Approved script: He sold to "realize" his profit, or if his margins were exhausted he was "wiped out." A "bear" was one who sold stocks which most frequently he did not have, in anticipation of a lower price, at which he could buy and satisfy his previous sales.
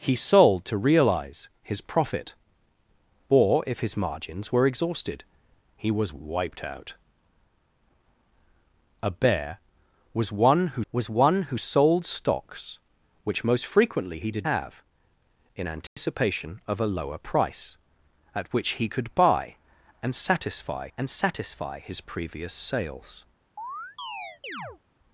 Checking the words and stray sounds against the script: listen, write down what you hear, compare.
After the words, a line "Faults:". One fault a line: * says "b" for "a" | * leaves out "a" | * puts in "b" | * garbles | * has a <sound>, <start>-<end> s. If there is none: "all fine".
He sold to "realize" his profit, or if his margins were exhausted he was "wiped out." A "bear" was one who was one who sold stocks which most frequently he did have, in anticipation of a lower price, at which he could buy and satisfy and satisfy his previous sales.
Faults:
* puts in "was one who"
* leaves out "not"
* has a dropout, 15.9-16.0 s
* puts in "and satisfy"
* has a chirp, 23.6-24.8 s